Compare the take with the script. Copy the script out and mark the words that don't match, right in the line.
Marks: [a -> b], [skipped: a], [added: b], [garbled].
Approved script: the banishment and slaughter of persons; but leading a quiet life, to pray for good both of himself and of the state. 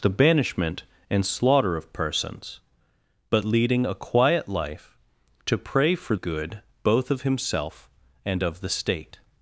the banishment and slaughter of persons; but leading a quiet life, to pray for good both of himself and of the state.